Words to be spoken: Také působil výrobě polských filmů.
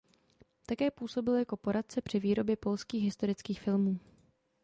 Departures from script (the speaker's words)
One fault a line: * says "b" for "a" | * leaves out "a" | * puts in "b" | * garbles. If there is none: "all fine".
* puts in "jako poradce při"
* puts in "historických"